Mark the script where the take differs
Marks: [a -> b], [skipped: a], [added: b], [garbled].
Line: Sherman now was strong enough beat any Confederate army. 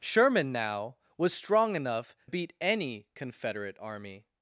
Sherman now was strong enough beat any Confederate army.